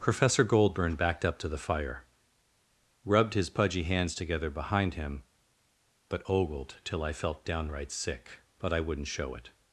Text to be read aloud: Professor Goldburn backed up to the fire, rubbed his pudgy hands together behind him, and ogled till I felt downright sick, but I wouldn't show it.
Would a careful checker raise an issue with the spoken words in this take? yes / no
yes